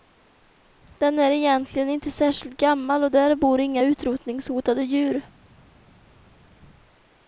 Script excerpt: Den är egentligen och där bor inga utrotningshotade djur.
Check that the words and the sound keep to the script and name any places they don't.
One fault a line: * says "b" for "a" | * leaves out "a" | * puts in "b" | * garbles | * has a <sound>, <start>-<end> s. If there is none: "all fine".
* puts in "inte särskilt gammal"